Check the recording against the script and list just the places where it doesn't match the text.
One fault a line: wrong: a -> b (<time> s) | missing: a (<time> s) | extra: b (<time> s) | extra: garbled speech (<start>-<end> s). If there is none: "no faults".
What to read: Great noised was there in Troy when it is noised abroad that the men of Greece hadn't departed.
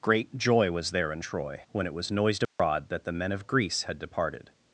wrong: noised -> joy (0.3 s)
wrong: is -> was (1.9 s)
wrong: hadn't -> had (3.8 s)